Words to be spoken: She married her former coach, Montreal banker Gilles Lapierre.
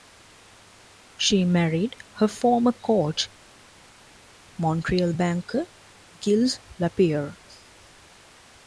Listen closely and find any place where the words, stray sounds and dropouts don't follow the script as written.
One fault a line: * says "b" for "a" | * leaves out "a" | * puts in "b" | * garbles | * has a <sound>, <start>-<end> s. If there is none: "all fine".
all fine